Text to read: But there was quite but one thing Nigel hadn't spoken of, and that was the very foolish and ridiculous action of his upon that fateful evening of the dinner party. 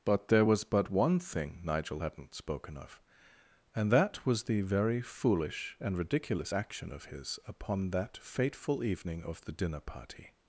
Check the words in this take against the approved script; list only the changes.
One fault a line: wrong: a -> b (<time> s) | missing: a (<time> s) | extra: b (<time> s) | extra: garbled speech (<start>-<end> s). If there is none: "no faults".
missing: quite (0.6 s)